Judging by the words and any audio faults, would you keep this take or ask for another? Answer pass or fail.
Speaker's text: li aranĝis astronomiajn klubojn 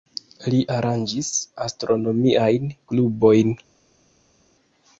pass